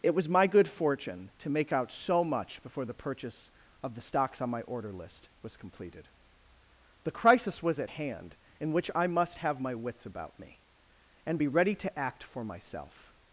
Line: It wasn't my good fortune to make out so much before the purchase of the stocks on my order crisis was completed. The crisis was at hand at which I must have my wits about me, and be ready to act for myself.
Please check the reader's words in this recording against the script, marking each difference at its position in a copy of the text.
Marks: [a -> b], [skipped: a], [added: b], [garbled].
It [wasn't -> was] my good fortune to make out so much before the purchase of the stocks on my order [crisis -> list] was completed. The crisis was at hand [at -> in] which I must have my wits about me, and be ready to act for myself.